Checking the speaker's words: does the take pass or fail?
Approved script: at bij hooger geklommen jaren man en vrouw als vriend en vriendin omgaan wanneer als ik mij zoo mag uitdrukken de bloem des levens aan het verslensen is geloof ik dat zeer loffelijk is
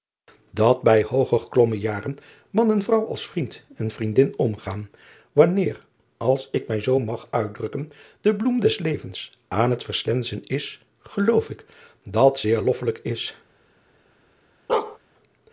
pass